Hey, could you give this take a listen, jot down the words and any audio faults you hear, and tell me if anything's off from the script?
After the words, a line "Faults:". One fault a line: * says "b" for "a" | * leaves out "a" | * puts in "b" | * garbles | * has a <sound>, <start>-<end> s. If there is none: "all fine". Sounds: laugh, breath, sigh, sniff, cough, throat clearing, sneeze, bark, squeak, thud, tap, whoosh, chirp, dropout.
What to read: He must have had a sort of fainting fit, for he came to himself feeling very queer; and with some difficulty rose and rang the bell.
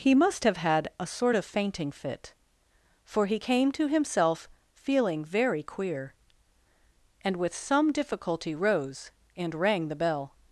He must have had a sort of fainting fit, for he came to himself feeling very queer; and with some difficulty rose and rang the bell.
Faults:
all fine